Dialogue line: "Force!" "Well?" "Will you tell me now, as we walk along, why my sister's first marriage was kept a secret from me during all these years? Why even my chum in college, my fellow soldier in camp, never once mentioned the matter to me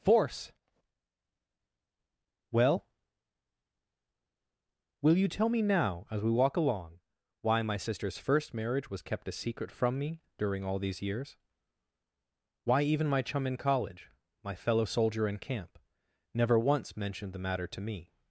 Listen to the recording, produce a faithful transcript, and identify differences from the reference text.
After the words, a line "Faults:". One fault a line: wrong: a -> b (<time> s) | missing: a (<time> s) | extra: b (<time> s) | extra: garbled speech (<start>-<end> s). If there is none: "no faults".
"Force!" "Well?" "Will you tell me now, as we walk along, why my sister's first marriage was kept a secret from me during all these years? Why even my chum in college, my fellow soldier in camp, never once mentioned the matter to me
Faults:
no faults